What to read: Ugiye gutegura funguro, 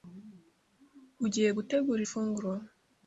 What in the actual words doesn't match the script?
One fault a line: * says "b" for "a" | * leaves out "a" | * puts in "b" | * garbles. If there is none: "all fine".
all fine